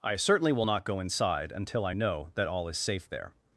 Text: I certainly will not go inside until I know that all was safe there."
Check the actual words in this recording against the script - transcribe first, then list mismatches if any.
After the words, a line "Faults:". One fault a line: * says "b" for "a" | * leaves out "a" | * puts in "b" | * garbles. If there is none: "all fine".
I certainly will not go inside until I know that all is safe there."
Faults:
* says "is" for "was"